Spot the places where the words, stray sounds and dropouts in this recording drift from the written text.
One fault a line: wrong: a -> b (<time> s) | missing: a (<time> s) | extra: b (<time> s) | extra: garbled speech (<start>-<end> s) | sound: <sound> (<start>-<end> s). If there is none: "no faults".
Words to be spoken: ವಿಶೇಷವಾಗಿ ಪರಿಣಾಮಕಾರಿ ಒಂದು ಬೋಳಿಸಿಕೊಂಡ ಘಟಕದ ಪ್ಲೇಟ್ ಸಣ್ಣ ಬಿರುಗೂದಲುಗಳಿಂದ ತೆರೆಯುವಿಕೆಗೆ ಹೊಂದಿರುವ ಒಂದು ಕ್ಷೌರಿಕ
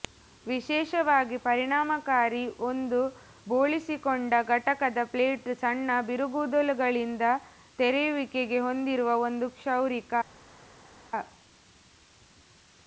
no faults